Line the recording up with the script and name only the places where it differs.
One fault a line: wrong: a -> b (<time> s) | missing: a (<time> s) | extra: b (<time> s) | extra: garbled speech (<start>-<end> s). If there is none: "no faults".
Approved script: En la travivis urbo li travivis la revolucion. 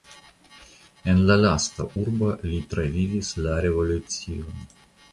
wrong: travivis -> lasta (1.4 s)